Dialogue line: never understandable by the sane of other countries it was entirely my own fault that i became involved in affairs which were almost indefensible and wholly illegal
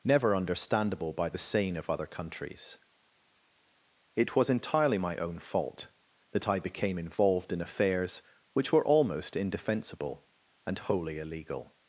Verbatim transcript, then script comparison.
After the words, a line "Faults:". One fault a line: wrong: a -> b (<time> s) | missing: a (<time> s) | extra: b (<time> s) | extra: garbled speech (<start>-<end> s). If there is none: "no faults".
never understandable by the sane of other countries it was entirely my own fault that i became involved in affairs which were almost indefensible and wholly illegal
Faults:
no faults